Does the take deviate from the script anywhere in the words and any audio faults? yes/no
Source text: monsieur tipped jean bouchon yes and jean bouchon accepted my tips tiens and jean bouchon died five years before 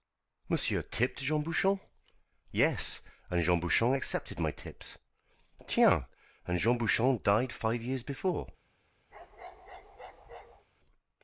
yes